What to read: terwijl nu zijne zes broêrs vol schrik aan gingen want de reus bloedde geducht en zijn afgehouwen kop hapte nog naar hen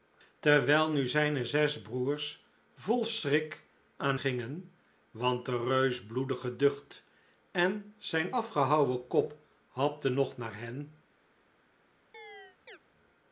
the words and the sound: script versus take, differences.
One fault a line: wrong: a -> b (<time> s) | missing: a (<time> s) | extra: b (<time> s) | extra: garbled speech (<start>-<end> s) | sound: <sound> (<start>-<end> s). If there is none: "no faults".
sound: chirp (12.1-12.8 s)